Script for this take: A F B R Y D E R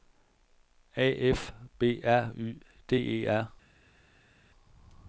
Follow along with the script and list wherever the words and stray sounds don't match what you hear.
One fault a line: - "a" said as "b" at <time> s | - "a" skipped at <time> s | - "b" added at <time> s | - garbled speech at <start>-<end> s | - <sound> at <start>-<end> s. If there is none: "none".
none